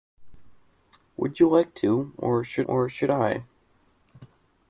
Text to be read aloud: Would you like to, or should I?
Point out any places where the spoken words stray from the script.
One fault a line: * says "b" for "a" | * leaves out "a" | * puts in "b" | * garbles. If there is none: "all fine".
* puts in "or should"